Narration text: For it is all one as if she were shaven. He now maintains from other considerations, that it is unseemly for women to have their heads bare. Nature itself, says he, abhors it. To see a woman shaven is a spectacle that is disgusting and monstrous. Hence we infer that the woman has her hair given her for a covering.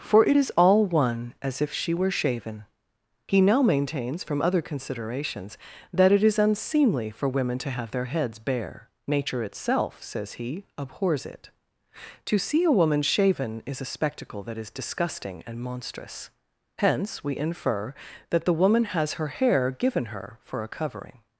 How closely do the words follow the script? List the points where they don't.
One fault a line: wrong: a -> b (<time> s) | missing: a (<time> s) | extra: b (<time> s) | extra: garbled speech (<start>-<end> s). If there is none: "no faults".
no faults